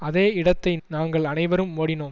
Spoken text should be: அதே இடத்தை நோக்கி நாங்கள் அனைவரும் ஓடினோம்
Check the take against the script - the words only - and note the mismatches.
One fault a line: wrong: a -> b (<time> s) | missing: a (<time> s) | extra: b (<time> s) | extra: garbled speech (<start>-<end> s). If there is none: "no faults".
missing: நோக்கி (0.8 s)